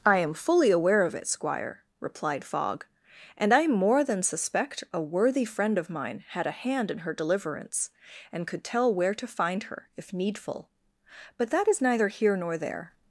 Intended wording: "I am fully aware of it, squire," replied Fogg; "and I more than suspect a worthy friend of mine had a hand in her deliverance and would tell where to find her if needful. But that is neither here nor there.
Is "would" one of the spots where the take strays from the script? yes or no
yes